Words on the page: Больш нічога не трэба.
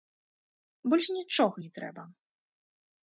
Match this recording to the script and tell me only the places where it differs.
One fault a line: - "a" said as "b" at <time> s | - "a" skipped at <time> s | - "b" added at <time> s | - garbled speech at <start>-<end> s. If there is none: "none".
none